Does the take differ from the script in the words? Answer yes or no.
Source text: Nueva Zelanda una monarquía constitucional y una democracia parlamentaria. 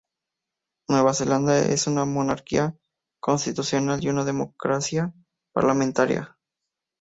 yes